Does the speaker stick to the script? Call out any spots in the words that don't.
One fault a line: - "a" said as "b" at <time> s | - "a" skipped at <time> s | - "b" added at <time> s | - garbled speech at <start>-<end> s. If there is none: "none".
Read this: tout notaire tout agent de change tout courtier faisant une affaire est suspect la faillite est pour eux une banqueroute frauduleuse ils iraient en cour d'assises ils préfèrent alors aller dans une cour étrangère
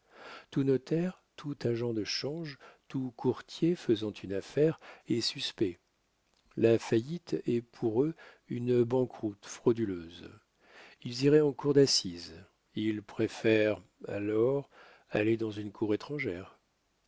none